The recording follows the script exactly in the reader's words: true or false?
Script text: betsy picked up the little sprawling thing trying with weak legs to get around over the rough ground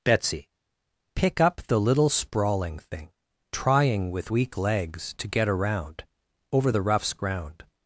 false